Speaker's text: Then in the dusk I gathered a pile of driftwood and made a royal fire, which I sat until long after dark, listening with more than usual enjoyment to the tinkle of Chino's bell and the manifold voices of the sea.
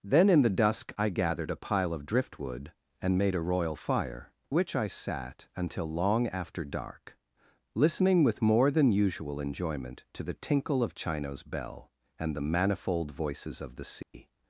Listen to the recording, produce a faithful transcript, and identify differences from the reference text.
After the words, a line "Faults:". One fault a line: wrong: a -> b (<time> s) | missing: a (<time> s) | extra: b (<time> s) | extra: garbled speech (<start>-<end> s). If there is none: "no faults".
Then in the dusk I gathered a pile of driftwood and made a royal fire, which I sat until long after dark, listening with more than usual enjoyment to the tinkle of Chino's bell and the manifold voices of the sea.
Faults:
no faults